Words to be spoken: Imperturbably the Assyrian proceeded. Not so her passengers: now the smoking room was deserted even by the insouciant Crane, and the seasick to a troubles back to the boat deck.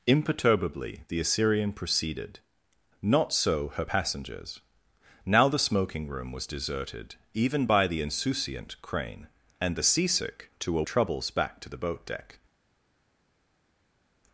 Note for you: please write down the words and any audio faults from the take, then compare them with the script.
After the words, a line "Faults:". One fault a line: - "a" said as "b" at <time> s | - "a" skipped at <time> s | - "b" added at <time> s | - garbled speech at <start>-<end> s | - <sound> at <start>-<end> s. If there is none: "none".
Imperturbably the Assyrian proceeded. Not so her passengers: now the smoking room was deserted even by the insouciant Crane, and the seasick to a troubles back to the boat deck.
Faults:
none